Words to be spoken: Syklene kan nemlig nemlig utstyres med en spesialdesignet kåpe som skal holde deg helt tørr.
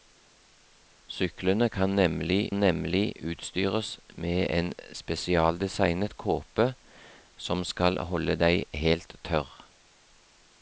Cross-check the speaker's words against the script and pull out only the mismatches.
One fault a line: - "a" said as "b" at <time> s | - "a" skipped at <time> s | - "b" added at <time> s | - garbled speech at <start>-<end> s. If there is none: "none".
none